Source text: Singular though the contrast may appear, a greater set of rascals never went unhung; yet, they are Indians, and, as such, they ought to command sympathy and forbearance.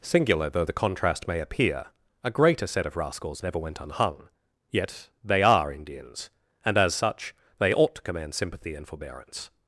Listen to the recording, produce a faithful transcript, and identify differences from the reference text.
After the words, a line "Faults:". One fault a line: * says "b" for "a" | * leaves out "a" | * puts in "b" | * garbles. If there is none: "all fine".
Singular though the contrast may appear, a greater set of rascals never went unhung; yet, they are Indians, and, as such, they ought to command sympathy and forbearance.
Faults:
all fine